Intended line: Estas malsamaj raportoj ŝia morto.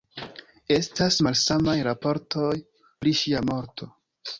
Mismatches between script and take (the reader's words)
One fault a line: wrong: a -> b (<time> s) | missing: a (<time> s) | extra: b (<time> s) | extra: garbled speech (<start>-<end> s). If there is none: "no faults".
extra: pri (2.8 s)